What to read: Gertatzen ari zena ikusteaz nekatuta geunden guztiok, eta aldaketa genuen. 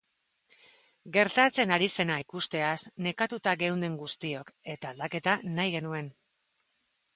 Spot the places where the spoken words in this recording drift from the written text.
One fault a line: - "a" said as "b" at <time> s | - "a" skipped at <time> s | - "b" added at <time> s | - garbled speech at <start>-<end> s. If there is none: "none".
- "nahi" added at 5.6 s